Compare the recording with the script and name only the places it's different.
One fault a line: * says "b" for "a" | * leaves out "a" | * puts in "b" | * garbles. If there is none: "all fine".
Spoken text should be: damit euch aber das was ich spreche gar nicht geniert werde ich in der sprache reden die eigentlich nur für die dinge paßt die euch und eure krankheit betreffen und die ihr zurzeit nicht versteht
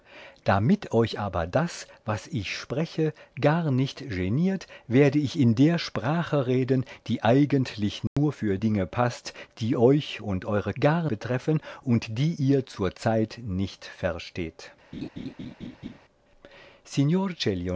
* leaves out "die"
* says "gar" for "krankheit"